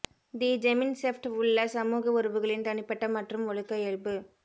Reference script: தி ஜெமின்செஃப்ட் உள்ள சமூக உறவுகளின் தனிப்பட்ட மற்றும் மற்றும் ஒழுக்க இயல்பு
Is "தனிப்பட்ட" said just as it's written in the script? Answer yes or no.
yes